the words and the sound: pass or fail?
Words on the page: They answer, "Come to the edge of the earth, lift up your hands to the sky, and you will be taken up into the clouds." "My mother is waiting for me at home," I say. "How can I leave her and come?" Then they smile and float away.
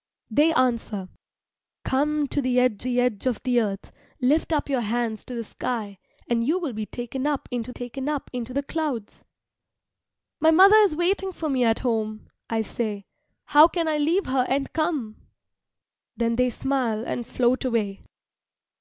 fail